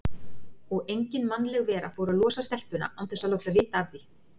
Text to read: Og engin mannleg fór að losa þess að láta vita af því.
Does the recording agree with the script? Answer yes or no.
no